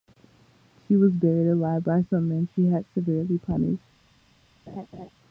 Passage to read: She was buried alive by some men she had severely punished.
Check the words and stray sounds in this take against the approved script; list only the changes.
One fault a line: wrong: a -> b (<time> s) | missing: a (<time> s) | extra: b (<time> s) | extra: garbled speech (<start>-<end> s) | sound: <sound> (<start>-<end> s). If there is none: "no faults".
sound: laugh (4.7-5.1 s)